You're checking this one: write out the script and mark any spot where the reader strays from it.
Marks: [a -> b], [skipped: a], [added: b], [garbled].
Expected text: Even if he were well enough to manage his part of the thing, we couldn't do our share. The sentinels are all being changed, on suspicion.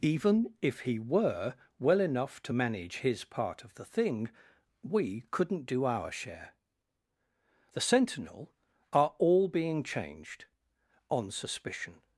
Even if he were well enough to manage his part of the thing, we couldn't do our share. The [sentinels -> sentinel] are all being changed, on suspicion.